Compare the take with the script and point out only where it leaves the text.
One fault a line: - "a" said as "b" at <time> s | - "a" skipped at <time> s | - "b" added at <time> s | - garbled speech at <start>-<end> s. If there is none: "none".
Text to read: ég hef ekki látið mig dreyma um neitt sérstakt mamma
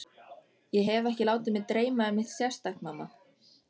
none